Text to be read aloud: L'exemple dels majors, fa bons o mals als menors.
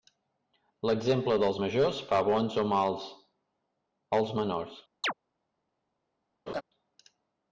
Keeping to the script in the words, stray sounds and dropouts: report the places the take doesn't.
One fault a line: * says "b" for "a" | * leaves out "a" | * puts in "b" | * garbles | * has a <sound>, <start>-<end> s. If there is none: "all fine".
* has a chirp, 5.0-5.1 s
* has a laugh, 6.5-6.6 s